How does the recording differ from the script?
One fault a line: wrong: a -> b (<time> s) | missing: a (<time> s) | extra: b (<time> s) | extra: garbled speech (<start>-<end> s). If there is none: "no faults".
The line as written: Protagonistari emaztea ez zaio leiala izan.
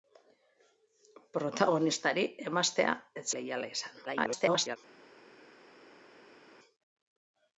missing: zaio (3.2 s)
extra: garbled speech (4.1-4.8 s)